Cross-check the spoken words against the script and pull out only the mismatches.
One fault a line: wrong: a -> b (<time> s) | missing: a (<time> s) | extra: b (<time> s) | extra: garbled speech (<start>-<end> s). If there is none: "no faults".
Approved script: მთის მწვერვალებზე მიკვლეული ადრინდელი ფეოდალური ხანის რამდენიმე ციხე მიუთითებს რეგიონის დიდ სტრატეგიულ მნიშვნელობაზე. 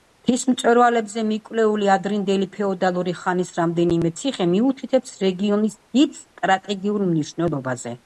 no faults